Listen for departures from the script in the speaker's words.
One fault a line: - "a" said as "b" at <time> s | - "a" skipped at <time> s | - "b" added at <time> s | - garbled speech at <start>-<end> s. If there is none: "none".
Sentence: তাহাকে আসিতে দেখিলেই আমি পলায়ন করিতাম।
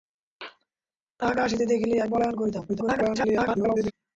- "আমি" skipped at 2.0 s
- garbled speech at 2.7-3.9 s